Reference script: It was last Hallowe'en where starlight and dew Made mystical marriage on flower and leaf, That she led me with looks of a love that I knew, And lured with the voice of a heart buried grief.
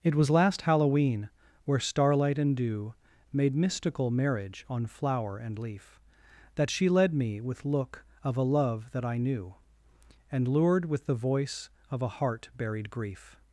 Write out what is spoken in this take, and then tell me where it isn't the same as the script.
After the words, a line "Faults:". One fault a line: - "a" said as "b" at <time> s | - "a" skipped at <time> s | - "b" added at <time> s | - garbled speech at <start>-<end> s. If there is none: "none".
It was last Hallowe'en where starlight and dew Made mystical marriage on flower and leaf, That she led me with look of a love that I knew, And lured with the voice of a heart buried grief.
Faults:
- "looks" said as "look" at 7.7 s